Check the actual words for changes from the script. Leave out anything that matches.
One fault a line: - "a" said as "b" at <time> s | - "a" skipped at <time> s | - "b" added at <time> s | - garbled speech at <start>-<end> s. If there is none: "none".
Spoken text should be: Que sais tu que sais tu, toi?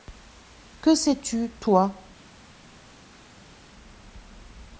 - "que sais tu" skipped at 1.5 s